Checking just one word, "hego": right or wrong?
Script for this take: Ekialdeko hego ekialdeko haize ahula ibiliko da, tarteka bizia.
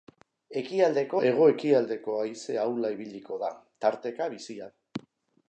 right